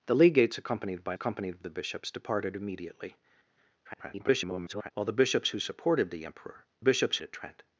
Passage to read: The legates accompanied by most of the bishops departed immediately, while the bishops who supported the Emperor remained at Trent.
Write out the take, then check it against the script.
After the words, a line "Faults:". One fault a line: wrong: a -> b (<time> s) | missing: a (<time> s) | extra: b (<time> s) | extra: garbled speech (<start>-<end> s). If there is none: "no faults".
The legates accompanied by accompanied of the bishops departed immediately, [garbled] while the bishops who supported the Emperor bishops at Trent.
Faults:
wrong: most -> accompanied (1.1 s)
extra: garbled speech (3.8-4.9 s)
wrong: remained -> bishops (6.8 s)